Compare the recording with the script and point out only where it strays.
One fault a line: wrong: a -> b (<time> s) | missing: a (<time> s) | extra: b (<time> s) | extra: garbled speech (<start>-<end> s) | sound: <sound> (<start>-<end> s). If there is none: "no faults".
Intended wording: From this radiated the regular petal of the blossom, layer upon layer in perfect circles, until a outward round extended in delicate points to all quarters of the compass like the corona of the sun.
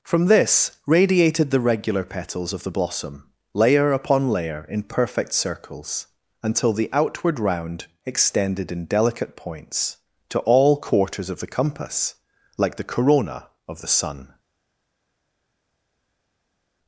wrong: petal -> petals (2.0 s)
wrong: a -> the (6.7 s)